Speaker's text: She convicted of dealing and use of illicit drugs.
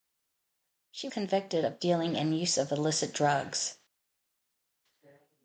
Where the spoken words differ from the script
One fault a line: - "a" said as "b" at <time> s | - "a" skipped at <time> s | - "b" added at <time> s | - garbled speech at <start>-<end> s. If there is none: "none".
none